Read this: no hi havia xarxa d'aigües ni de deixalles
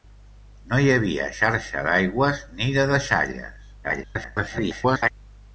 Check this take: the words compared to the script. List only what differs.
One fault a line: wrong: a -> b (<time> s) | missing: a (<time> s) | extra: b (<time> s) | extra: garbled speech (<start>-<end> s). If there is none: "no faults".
extra: garbled speech (3.8-5.1 s)